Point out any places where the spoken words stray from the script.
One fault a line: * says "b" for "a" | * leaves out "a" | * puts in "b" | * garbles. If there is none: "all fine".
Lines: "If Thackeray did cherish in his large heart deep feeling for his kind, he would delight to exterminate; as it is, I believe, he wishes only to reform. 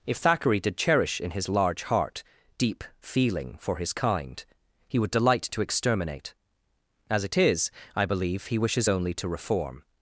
all fine